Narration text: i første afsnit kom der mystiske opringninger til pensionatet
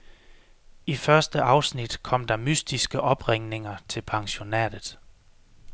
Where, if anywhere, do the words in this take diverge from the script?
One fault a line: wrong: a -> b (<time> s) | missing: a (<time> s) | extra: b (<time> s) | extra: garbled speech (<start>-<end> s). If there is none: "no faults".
no faults